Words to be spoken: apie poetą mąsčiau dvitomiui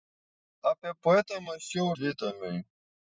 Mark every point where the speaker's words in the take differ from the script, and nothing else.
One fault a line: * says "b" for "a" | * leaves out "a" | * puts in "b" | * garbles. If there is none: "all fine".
all fine